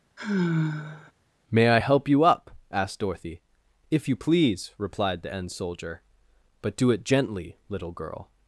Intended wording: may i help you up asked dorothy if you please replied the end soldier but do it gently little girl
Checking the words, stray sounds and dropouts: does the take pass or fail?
fail